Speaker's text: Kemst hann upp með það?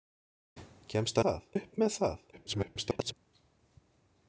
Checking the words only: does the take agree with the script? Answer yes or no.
no